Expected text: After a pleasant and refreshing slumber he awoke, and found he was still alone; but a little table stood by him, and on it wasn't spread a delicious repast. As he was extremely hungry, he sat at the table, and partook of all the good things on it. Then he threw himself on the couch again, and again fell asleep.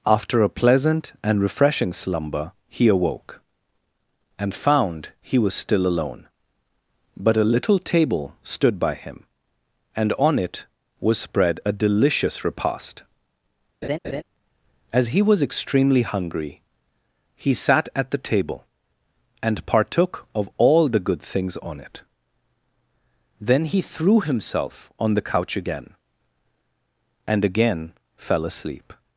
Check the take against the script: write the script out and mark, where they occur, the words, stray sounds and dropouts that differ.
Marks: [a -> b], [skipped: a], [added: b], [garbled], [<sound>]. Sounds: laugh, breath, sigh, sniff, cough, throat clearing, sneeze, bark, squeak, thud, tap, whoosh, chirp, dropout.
After a pleasant and refreshing slumber he awoke, and found he was still alone; but a little table stood by him, and on it [wasn't -> was] spread a delicious repast. [laugh] As he was extremely hungry, he sat at the table, and partook of all the good things on it. Then he threw himself on the couch again, and again fell asleep.